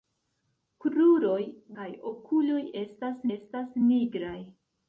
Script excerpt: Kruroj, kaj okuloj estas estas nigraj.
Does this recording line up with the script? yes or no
yes